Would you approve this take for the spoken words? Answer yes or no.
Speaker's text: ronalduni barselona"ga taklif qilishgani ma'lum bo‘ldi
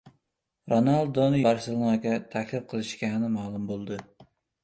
yes